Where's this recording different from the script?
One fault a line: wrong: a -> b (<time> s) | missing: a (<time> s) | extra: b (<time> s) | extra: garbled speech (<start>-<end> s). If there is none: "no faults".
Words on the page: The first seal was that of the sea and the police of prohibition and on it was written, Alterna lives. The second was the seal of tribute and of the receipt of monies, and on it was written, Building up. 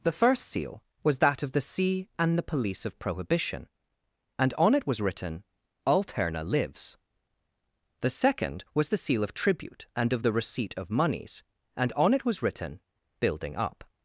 no faults